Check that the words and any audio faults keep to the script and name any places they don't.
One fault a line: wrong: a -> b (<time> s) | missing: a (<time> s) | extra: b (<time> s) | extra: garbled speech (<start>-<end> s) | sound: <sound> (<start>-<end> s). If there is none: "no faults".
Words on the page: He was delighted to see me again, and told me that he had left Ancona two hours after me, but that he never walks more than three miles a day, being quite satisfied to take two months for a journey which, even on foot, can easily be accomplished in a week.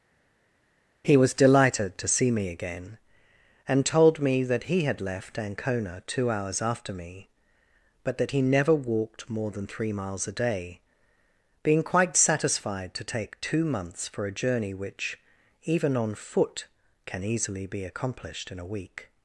wrong: walks -> walked (8.7 s)